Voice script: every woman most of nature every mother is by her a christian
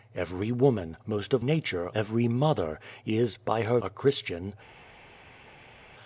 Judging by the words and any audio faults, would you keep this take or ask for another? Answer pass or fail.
pass